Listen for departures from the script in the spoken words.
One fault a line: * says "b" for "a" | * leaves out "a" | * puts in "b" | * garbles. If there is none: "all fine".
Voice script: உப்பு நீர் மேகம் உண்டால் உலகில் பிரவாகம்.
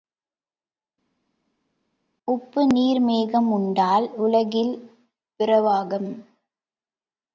all fine